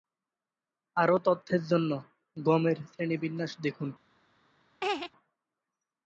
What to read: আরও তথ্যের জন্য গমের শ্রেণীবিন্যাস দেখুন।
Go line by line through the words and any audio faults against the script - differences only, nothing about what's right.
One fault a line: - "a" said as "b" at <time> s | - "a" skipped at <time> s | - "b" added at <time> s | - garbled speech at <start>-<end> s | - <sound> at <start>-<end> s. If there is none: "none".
- laugh at 4.8-5.1 s